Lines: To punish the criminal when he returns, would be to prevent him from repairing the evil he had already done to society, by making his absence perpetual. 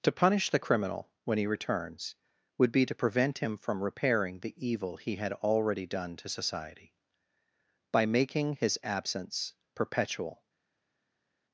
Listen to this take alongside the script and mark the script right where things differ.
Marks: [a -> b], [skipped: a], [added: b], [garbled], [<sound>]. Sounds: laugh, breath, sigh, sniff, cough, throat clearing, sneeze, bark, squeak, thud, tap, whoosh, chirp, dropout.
To punish the criminal when he returns, would be to prevent him from repairing the evil he had already done to society, by making his absence perpetual.